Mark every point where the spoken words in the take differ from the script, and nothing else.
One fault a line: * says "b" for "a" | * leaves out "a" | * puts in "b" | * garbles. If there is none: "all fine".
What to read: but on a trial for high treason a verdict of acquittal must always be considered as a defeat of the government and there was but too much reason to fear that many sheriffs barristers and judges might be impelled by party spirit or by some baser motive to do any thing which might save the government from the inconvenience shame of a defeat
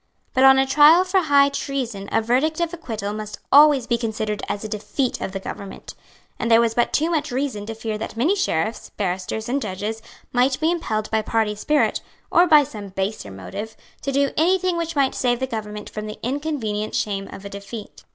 all fine